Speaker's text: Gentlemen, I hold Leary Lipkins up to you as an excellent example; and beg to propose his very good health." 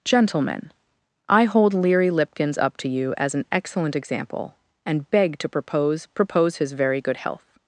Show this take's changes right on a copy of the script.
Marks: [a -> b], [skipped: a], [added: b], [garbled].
Gentlemen, I hold Leary Lipkins up to you as an excellent example; and beg to propose [added: propose] his very good health."